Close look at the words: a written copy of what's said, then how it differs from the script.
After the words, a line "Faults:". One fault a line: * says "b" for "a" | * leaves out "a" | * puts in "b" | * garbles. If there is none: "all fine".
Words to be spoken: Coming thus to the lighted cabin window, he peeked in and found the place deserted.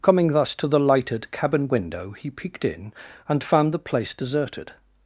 Coming thus to the lighted cabin window, he peeked in and found the place deserted.
Faults:
all fine